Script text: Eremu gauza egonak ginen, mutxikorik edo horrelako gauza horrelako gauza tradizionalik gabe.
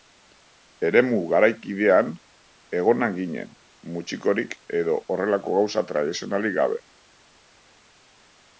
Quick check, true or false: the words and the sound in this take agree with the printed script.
false